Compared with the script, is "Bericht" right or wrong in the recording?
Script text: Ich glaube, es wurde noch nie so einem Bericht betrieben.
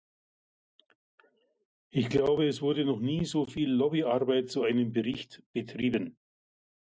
right